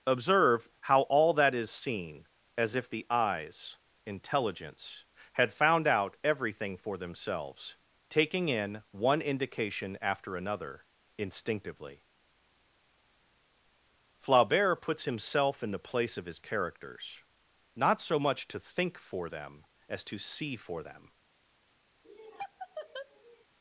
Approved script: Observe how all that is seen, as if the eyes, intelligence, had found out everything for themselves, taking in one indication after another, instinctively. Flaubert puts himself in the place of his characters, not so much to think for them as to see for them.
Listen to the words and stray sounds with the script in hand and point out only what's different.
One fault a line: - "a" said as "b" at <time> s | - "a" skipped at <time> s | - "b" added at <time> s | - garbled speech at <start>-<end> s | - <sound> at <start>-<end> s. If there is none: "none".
- laugh at 22.0-23.4 s